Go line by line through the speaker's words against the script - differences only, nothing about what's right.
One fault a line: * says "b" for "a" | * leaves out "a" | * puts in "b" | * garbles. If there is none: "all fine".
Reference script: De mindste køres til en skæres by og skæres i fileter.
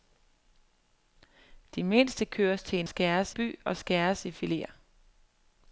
all fine